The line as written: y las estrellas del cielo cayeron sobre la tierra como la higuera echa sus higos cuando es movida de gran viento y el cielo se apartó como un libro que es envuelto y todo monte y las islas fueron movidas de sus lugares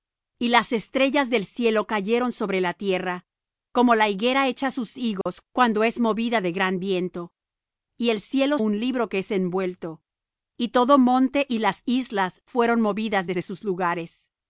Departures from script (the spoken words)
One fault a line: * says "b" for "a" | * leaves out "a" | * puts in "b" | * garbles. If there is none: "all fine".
* leaves out "se apartó como"
* puts in "de"